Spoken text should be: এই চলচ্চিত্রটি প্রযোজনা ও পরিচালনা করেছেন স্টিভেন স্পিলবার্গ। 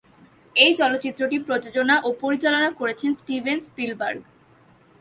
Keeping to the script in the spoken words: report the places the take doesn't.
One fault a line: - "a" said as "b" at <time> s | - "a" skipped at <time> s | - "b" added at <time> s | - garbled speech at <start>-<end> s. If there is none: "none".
none